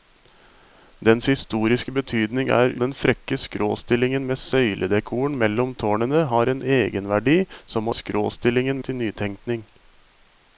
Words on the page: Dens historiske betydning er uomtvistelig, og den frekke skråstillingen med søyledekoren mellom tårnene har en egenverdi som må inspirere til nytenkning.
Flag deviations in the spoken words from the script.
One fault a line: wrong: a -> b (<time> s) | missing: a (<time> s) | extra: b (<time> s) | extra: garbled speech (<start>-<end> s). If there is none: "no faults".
missing: uomtvistelig og (2.7 s)
wrong: inspirere -> skråstillingen (7.9 s)